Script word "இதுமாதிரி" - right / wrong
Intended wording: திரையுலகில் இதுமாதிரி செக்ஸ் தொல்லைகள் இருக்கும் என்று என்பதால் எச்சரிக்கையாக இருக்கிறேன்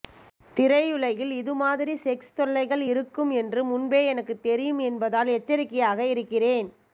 right